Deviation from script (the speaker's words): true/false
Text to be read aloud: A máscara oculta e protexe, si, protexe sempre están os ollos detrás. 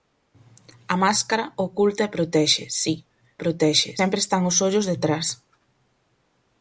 false